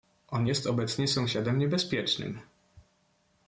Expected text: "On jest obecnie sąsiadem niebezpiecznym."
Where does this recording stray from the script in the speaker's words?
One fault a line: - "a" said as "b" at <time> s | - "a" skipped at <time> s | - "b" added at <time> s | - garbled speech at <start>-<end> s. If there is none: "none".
none